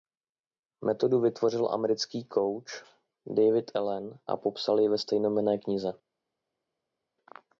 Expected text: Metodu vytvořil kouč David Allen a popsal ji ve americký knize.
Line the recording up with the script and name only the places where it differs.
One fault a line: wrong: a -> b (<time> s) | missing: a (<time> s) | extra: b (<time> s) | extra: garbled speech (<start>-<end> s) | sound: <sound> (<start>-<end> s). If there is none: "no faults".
extra: americký (1.7 s)
wrong: americký -> stejnojmenné (5.0 s)